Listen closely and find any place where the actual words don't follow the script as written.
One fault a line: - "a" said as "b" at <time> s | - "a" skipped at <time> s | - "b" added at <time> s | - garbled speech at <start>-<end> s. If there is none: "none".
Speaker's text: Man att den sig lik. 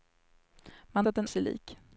none